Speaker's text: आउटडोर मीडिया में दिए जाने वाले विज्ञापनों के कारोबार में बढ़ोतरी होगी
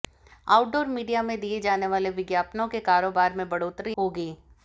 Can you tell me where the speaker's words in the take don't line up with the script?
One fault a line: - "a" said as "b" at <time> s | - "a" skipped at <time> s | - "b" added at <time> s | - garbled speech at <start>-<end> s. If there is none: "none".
none